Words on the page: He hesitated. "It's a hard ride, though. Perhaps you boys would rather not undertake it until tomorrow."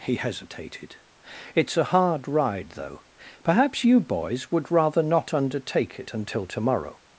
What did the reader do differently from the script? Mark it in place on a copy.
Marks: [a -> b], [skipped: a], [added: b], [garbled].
He hesitated. "It's a hard ride, though. Perhaps you boys would rather not undertake it until tomorrow."